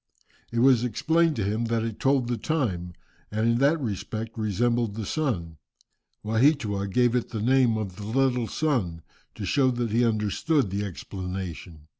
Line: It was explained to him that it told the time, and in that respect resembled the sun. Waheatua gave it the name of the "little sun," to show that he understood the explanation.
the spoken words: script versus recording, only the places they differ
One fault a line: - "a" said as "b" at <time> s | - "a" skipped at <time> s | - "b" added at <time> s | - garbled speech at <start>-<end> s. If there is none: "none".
none